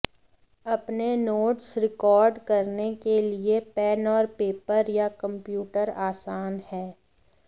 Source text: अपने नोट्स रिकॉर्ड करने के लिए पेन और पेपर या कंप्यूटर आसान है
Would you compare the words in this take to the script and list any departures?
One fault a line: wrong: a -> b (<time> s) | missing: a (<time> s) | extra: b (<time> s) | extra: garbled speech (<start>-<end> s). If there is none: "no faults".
no faults